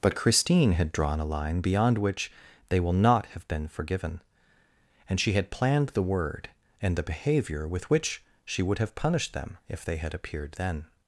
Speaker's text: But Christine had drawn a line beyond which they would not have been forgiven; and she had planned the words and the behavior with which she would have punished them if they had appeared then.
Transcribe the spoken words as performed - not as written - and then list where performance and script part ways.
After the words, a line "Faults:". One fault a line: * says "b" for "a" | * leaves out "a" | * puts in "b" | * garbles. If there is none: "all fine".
But Christine had drawn a line beyond which they will not have been forgiven; and she had planned the word and the behavior with which she would have punished them if they had appeared then.
Faults:
* says "will" for "would"
* says "word" for "words"